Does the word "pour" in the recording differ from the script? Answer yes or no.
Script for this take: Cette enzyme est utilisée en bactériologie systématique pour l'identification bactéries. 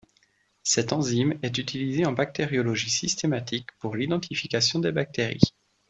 no